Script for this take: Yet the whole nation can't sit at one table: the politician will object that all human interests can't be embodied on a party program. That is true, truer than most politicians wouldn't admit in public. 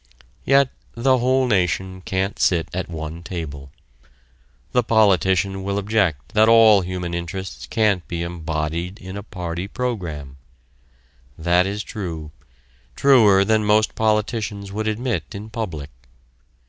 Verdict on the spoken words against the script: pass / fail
fail